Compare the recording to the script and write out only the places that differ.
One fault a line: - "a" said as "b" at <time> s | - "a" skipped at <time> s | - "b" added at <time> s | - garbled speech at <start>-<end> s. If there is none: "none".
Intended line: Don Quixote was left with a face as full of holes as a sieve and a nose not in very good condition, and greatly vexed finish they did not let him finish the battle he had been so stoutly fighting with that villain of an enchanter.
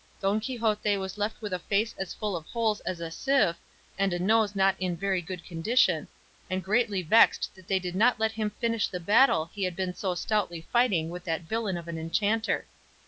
- "finish" said as "that" at 7.5 s